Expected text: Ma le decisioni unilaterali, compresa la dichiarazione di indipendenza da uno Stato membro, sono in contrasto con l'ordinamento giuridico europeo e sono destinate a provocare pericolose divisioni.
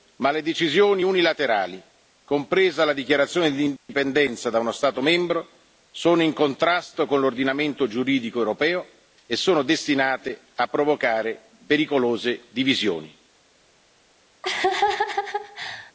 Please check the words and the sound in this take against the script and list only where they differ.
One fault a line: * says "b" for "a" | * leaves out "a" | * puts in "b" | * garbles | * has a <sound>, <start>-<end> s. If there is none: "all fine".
* has a dropout, 3.8-3.9 s
* has a laugh, 14.4-15.9 s